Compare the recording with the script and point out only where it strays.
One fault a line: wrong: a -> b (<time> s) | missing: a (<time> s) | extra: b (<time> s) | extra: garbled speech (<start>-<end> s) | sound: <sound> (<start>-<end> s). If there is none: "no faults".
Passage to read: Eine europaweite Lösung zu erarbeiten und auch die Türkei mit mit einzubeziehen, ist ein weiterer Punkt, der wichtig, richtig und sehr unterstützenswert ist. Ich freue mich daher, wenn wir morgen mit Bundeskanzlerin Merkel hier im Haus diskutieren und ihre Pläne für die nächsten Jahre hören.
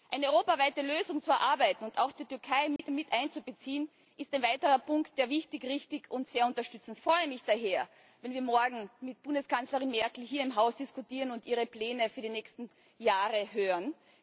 sound: dropout (2.8-2.8 s)